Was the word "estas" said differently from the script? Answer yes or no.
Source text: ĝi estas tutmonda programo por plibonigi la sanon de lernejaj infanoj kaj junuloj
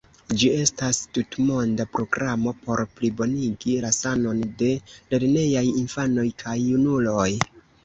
no